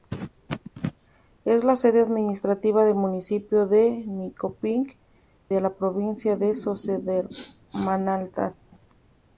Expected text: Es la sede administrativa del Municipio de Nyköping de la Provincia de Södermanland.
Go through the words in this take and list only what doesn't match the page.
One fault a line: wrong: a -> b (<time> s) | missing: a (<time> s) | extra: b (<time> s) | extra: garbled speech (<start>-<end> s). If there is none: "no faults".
no faults